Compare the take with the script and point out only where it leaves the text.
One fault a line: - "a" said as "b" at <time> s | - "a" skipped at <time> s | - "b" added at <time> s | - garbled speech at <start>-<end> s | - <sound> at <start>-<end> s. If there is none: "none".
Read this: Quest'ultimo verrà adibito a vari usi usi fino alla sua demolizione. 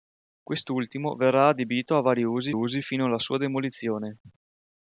none